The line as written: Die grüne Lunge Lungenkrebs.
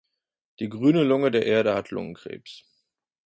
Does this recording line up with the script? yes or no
no